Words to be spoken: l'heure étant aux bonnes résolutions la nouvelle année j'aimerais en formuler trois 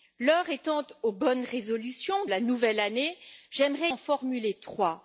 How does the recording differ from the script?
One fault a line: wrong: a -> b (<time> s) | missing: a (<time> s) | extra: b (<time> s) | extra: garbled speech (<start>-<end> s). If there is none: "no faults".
no faults